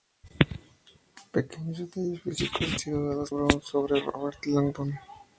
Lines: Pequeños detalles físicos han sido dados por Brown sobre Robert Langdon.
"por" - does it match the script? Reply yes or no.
no